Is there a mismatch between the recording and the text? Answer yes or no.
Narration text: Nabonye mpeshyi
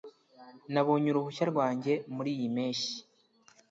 yes